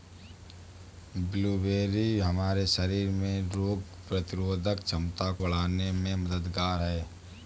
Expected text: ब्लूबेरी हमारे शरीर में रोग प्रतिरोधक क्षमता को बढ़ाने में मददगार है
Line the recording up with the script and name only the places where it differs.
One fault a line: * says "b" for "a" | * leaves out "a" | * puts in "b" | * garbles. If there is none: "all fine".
* leaves out "को"